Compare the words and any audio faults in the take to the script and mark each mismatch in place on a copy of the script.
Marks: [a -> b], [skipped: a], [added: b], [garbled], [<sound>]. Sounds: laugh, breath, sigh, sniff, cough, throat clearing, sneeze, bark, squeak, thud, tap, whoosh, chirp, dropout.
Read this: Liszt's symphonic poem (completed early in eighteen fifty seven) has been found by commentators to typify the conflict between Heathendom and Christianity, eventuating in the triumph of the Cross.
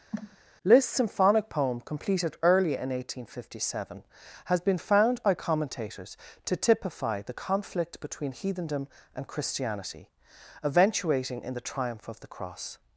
[cough] Liszt's symphonic poem (completed early in eighteen fifty seven) has been found by commentators to typify the conflict between Heathendom and Christianity, eventuating in the triumph of the Cross.